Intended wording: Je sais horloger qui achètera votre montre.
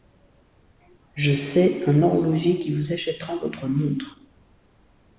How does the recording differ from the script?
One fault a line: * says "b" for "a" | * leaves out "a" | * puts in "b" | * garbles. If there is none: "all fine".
* puts in "un"
* puts in "vous"